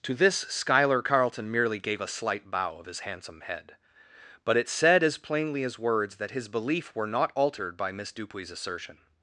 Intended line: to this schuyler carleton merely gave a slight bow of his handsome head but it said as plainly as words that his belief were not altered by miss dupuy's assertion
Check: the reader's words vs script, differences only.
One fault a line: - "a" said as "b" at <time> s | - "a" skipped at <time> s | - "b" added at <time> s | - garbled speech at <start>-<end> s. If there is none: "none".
none